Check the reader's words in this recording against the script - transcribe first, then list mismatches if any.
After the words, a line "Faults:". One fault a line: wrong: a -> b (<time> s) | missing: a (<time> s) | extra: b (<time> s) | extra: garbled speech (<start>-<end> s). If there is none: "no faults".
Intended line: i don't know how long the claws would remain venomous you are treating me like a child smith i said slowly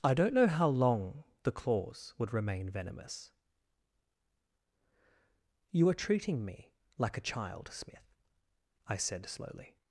i don't know how long the claws would remain venomous you are treating me like a child smith i said slowly
Faults:
no faults